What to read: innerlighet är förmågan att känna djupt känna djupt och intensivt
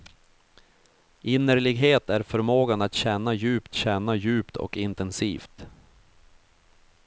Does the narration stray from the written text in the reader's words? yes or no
no